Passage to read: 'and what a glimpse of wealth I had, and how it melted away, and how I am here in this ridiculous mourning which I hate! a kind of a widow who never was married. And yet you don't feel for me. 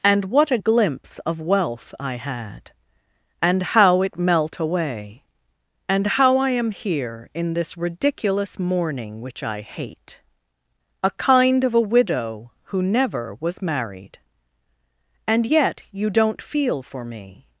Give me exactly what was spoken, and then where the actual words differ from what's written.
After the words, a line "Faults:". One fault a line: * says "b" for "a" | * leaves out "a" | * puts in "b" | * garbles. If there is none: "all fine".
'and what a glimpse of wealth I had, and how it melt away, and how I am here in this ridiculous mourning which I hate! a kind of a widow who never was married. And yet you don't feel for me.
Faults:
* says "melt" for "melted"